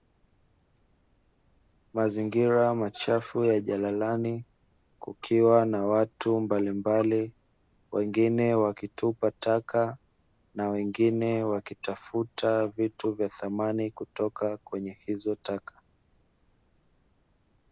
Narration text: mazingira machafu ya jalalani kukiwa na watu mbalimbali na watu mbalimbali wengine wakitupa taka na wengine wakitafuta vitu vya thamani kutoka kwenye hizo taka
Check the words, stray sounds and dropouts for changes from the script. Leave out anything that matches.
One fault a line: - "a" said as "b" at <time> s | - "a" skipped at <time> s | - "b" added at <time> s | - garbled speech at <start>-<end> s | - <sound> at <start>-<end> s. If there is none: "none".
- "na watu mbalimbali" skipped at 7.3 s